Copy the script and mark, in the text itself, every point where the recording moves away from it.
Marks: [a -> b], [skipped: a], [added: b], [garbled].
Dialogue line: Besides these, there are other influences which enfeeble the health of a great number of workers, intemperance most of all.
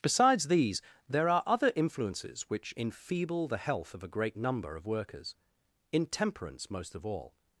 Besides these, there are other influences which enfeeble the health of a great number of workers, intemperance most of all.